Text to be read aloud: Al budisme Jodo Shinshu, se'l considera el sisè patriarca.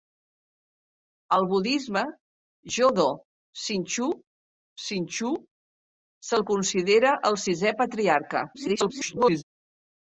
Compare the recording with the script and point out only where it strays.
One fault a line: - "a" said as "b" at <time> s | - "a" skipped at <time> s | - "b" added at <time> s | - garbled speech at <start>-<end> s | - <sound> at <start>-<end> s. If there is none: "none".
- "Shinshu" added at 4.9 s
- garbled speech at 8.5-9.4 s